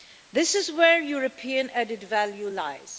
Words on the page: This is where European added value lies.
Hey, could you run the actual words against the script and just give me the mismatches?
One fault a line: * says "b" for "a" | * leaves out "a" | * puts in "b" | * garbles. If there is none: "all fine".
all fine